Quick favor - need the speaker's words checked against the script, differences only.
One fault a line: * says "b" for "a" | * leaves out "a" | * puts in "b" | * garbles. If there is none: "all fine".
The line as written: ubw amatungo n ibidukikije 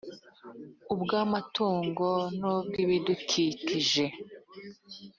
* puts in "ubw"